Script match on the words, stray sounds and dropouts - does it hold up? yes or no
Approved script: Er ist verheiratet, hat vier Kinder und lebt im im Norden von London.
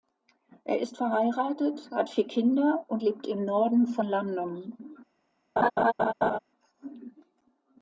no